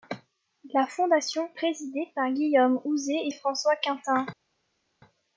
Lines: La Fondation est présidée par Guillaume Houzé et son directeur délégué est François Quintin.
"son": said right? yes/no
no